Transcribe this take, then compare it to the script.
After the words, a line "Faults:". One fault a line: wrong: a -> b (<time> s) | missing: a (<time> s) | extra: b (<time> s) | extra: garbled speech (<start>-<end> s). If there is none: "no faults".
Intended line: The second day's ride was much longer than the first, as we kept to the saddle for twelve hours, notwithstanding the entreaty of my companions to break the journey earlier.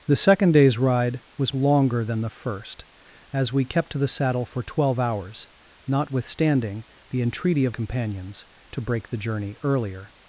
The second day's ride was longer than the first, as we kept to the saddle for twelve hours, notwithstanding the entreaty of companions to break the journey earlier.
Faults:
missing: much (1.5 s)
missing: my (7.8 s)